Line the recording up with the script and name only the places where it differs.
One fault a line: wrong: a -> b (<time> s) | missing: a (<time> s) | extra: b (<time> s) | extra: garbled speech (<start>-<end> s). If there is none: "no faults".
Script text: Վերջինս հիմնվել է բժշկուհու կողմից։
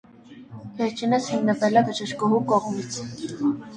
no faults